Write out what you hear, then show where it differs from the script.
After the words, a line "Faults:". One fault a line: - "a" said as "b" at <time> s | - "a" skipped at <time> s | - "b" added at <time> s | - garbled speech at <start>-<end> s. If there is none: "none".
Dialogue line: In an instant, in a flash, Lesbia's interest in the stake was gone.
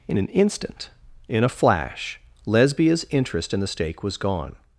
In an instant, in a flash, Lesbia's interest in the stake was gone.
Faults:
none